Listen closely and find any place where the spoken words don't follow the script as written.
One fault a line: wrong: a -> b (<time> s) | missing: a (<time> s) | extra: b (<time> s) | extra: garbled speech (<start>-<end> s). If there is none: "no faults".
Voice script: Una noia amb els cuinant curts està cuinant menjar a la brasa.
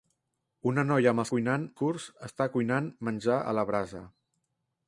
no faults